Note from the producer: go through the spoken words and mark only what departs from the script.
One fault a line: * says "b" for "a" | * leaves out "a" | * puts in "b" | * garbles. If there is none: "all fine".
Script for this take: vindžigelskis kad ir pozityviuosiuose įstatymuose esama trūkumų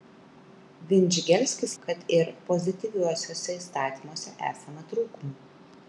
all fine